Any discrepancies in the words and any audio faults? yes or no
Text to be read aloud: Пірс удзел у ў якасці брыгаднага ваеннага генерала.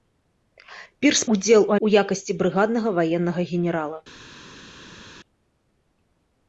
no